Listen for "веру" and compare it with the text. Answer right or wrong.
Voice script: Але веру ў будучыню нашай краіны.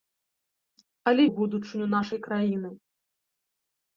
wrong